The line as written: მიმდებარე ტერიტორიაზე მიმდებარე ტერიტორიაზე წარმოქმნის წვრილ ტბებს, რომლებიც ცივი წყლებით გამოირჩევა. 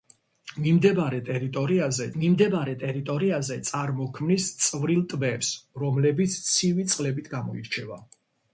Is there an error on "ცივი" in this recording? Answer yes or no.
no